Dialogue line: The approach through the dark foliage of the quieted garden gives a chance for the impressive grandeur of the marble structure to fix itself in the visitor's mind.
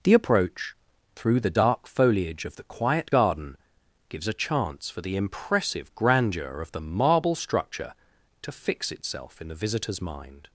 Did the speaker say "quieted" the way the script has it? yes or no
no